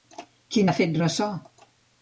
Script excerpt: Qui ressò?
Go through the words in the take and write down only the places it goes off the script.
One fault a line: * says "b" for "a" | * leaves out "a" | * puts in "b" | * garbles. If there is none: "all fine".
* puts in "n'ha fet"